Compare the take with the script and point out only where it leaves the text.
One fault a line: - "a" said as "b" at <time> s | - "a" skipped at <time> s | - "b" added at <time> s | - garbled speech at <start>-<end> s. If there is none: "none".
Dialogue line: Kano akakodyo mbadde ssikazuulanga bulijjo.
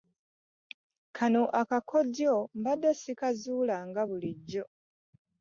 none